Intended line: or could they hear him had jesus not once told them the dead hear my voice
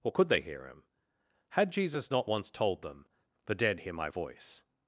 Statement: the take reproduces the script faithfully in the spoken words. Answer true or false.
true